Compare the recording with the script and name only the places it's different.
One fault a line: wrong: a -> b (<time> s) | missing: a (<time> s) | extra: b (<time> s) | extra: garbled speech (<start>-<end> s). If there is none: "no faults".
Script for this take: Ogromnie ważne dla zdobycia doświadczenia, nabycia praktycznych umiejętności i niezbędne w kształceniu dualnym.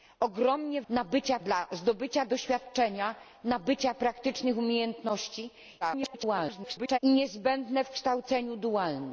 wrong: ważne -> nabycia (0.9 s)
extra: garbled speech (5.8-7.0 s)